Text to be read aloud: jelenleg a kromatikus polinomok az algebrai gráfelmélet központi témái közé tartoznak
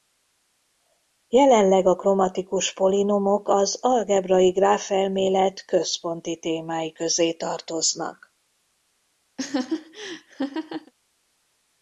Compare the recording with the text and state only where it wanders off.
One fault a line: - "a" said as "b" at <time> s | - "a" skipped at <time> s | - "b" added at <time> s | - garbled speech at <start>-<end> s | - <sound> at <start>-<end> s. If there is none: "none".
- laugh at 9.4-10.9 s